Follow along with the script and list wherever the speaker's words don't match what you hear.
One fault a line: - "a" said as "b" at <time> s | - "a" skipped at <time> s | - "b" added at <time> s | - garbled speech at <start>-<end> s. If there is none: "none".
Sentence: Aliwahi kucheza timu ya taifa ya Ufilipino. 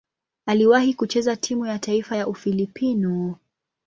none